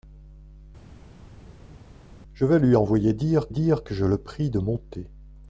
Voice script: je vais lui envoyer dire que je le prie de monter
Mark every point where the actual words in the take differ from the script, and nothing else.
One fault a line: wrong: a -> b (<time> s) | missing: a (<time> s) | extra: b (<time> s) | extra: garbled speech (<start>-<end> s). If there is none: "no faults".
extra: dire (3.5 s)